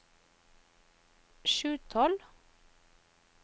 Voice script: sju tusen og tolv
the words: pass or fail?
fail